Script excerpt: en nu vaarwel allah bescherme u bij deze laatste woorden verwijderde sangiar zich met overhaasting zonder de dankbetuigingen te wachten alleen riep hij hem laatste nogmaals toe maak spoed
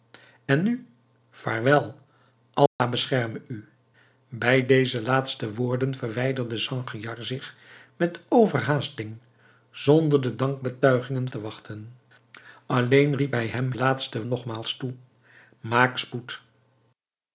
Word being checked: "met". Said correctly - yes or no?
yes